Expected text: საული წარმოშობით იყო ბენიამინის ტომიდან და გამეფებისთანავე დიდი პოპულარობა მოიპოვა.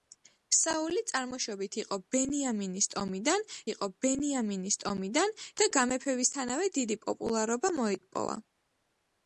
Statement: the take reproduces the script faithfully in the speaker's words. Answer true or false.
false